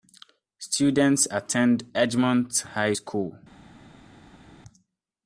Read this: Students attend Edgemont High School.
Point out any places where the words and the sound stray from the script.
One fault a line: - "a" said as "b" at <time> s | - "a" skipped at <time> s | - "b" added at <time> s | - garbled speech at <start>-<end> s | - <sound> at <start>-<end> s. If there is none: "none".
none